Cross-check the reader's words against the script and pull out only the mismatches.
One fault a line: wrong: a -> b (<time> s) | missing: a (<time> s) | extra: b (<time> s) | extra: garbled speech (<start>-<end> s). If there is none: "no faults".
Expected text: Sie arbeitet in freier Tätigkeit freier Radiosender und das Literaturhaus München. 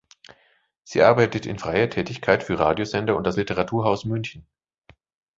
wrong: freier -> für (2.4 s)